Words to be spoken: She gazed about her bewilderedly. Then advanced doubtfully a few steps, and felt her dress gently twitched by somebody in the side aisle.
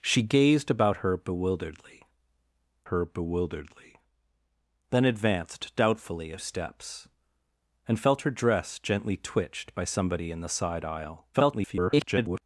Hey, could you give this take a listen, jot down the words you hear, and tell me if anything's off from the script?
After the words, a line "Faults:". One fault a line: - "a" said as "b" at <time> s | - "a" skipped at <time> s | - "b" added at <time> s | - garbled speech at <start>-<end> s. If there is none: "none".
She gazed about her bewilderedly her bewilderedly. Then advanced doubtfully a steps, and felt her dress gently twitched by somebody in the side aisle. [garbled]
Faults:
- "her bewilderedly" added at 2.8 s
- "few" skipped at 6.4 s
- garbled speech at 11.3-12.4 s